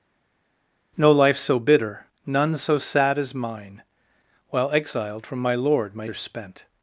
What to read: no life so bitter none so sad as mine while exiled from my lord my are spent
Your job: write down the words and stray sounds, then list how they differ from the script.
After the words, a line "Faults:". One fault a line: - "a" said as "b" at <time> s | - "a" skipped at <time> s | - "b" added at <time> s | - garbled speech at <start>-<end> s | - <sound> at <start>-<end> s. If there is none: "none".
no life so bitter none so sad as mine while exiled from my lord my are spent
Faults:
none